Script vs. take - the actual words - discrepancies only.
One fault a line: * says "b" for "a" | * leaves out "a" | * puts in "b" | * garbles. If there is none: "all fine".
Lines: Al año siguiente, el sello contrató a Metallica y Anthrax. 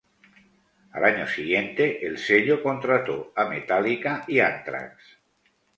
all fine